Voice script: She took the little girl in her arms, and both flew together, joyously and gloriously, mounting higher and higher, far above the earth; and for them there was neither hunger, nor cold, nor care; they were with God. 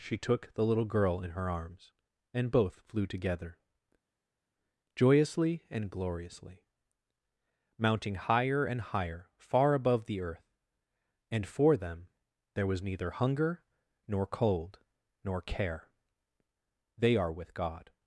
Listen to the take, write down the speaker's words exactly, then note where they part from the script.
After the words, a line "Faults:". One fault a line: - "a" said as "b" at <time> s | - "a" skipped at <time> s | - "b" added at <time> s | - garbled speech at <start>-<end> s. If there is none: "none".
She took the little girl in her arms, and both flew together, joyously and gloriously, mounting higher and higher, far above the earth; and for them there was neither hunger, nor cold, nor care; they are with God.
Faults:
- "were" said as "are" at 17.2 s